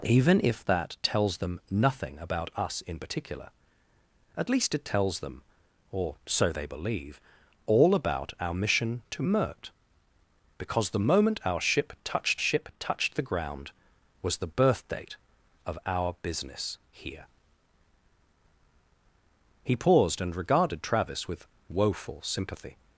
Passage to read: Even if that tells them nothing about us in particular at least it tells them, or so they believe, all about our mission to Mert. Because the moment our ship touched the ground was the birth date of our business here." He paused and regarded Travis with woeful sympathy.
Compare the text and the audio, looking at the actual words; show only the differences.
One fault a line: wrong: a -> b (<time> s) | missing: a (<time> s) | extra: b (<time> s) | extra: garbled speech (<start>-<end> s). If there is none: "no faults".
extra: ship touched (12.4 s)